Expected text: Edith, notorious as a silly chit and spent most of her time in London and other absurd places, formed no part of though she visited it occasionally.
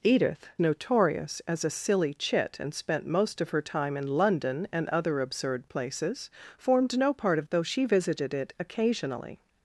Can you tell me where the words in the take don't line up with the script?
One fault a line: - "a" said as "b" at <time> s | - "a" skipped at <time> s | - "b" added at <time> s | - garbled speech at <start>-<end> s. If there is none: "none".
none